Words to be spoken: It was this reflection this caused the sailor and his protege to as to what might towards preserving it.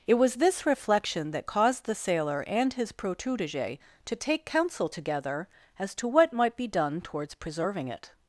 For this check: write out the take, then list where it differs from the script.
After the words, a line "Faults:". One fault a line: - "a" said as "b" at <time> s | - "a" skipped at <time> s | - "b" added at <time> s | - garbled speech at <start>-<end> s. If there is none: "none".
It was this reflection that caused the sailor and his protege to take counsel together as to what might be done towards preserving it.
Faults:
- "this" said as "that" at 1.3 s
- "take counsel together" added at 4.2 s
- "be done" added at 6.6 s